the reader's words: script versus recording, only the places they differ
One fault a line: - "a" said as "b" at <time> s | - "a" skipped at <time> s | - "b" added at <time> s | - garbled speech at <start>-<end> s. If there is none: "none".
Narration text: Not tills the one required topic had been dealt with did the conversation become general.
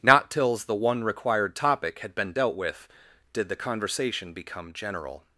none